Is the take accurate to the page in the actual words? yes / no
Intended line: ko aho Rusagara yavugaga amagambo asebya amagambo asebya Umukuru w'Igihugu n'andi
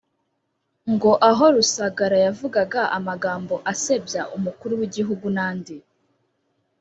no